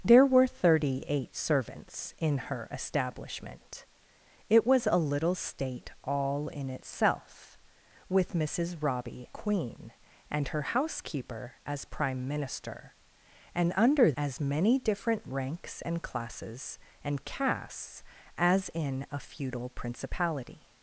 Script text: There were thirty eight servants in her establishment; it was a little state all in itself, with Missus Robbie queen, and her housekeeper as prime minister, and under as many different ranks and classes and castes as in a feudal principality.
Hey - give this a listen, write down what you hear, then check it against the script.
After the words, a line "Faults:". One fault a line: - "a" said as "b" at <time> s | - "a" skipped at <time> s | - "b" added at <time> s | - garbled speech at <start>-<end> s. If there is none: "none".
There were thirty eight servants in her establishment; it was a little state all in itself, with Missus Robbie queen, and her housekeeper as prime minister, and under as many different ranks and classes and castes as in a feudal principality.
Faults:
none